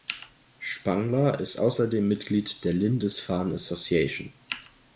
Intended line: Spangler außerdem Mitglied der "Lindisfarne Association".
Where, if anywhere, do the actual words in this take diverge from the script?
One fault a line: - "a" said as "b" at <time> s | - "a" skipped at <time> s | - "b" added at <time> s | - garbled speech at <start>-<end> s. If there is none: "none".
- "ist" added at 1.4 s